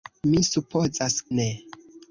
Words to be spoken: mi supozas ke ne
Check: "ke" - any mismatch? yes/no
yes